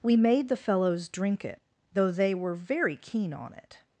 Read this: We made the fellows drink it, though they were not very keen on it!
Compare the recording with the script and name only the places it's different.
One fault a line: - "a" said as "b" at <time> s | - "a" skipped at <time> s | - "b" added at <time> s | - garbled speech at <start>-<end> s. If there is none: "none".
- "not" skipped at 2.5 s